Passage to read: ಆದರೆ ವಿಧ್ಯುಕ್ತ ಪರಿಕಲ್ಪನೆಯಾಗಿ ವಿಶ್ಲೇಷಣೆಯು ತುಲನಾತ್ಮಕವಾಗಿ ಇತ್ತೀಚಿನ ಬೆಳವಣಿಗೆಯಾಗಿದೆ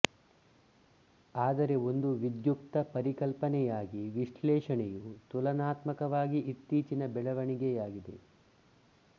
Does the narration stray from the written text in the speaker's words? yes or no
yes